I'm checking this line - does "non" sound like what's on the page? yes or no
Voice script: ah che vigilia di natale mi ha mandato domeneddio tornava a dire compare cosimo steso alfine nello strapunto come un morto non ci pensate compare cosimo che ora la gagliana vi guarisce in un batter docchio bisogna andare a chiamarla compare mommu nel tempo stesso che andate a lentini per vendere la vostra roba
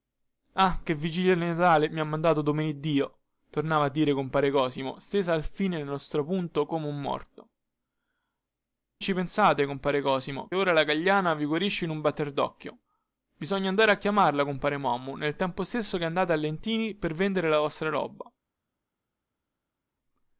no